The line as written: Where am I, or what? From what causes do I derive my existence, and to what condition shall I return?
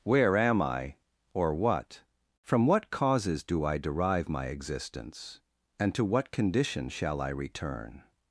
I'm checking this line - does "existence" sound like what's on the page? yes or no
yes